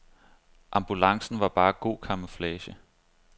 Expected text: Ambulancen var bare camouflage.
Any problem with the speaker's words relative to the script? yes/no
yes